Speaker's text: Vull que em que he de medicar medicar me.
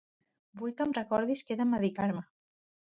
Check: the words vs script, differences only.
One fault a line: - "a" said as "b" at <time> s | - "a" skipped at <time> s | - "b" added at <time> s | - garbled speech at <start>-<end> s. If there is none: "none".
- "recordis" added at 1.0 s
- "medicar" skipped at 2.1 s